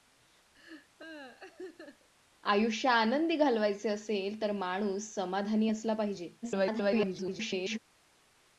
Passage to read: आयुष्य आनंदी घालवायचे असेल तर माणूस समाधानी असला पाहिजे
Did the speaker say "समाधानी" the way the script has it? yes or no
yes